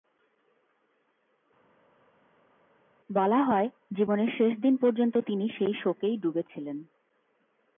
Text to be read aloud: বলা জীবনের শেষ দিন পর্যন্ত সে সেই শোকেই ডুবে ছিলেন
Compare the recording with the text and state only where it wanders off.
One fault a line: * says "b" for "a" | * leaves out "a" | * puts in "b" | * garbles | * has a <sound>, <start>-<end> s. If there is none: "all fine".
* puts in "হয়"
* says "তিনি" for "সে"